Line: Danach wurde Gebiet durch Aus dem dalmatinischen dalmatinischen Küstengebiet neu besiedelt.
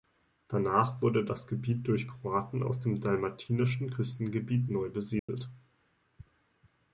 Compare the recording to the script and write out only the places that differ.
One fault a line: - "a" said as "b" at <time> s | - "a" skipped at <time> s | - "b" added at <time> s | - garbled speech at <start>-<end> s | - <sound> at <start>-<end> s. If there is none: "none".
- "das" added at 1.2 s
- "Kroaten" added at 2.1 s
- "dalmatinischen" skipped at 3.9 s
- dropout at 5.2-5.3 s